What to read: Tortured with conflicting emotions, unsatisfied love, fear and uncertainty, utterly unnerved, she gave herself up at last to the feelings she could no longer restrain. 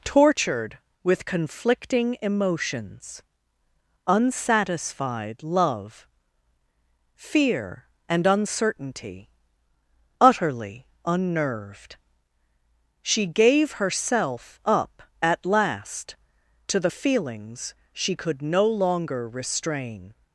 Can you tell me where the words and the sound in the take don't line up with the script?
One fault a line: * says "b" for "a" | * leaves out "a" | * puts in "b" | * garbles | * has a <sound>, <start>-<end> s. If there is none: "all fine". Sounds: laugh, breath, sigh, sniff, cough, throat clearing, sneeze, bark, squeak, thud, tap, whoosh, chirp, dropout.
all fine